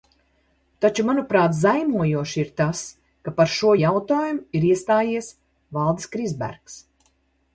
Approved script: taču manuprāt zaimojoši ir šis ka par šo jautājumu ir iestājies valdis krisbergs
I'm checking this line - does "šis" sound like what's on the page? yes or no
no